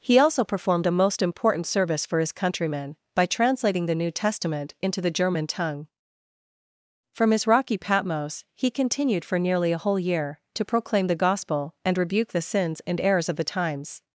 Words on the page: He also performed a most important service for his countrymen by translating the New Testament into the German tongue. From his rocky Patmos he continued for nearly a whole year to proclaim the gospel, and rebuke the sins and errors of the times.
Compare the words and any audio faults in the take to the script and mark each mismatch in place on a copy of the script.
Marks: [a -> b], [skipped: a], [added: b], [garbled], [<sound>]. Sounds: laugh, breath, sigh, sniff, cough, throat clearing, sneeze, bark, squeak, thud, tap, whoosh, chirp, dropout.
He also performed a most important service for his countrymen by translating the New Testament into the German tongue. From his rocky Patmos he continued for nearly a whole year to proclaim the gospel, and rebuke the sins and errors of the times.